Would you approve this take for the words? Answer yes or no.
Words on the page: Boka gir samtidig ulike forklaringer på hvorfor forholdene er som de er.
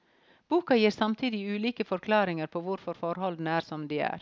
yes